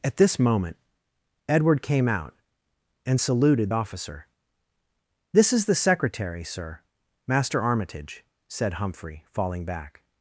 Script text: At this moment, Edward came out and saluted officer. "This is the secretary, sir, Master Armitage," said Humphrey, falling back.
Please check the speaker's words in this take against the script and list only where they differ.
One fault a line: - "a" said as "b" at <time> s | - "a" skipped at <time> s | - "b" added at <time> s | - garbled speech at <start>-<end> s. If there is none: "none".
none